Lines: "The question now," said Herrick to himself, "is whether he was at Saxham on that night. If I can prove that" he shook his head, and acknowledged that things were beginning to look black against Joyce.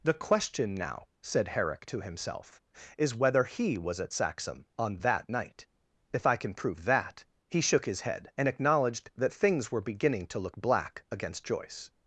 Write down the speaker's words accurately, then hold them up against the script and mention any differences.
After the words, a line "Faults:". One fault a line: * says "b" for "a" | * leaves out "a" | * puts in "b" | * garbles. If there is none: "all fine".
"The question now," said Herrick to himself, "is whether he was at Saxham on that night. If I can prove that" he shook his head, and acknowledged that things were beginning to look black against Joyce.
Faults:
all fine